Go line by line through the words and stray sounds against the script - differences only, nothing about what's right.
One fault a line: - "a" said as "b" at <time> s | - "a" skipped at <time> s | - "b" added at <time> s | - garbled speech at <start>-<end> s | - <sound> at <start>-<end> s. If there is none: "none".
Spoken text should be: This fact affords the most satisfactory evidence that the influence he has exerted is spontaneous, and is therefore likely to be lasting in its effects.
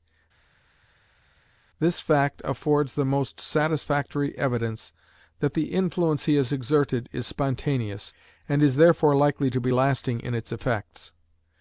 none